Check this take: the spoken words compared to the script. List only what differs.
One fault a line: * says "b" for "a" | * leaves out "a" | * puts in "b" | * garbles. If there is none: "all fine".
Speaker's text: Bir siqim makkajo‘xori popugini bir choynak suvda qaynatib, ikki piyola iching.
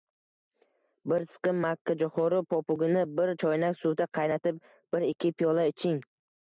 * puts in "bir"